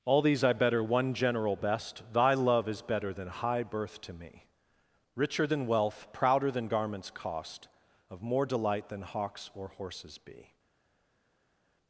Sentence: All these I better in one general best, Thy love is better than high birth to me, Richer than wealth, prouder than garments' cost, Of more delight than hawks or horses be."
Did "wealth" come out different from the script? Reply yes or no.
no